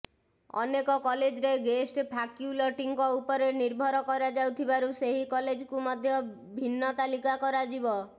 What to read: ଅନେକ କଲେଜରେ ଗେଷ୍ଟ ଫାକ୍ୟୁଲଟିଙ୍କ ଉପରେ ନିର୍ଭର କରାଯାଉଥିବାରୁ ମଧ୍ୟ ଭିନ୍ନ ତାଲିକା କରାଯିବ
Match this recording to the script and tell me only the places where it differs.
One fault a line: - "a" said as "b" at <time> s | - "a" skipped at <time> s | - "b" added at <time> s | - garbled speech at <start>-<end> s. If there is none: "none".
- "ସେହି କଲେଜକୁ" added at 5.0 s